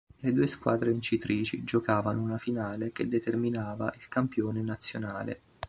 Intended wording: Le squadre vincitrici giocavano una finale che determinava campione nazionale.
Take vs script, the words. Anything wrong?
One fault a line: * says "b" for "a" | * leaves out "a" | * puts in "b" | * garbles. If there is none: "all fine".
* puts in "due"
* puts in "il"